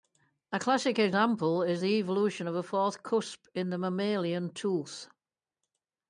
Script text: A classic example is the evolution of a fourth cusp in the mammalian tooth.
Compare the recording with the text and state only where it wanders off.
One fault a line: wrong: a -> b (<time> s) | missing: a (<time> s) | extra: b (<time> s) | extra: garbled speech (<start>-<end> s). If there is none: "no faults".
no faults